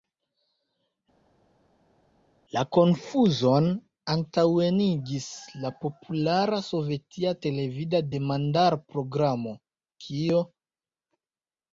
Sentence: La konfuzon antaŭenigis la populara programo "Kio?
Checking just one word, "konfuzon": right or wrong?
right